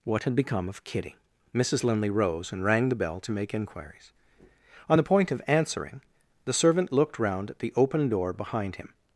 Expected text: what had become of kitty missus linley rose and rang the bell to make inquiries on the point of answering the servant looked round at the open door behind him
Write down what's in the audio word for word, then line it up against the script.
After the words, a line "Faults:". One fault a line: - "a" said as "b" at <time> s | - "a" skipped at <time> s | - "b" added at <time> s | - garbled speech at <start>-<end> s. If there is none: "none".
what had become of kitty missus linley rose and rang the bell to make inquiries on the point of answering the servant looked round at the open door behind him
Faults:
none